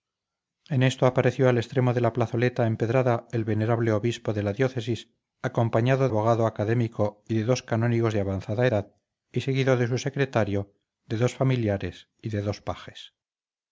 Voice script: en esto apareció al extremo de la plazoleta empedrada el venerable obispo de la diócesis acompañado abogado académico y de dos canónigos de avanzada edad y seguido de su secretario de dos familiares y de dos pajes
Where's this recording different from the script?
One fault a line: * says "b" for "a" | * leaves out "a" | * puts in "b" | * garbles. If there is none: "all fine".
all fine